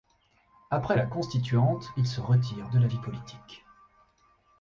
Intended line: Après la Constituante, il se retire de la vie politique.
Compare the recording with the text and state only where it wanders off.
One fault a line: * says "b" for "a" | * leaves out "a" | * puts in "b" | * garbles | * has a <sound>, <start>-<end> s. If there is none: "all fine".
all fine